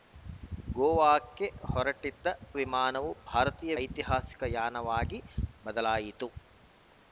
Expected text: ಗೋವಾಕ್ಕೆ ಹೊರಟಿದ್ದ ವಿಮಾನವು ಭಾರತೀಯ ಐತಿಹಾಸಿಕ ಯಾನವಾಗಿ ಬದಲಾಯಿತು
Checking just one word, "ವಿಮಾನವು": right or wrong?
right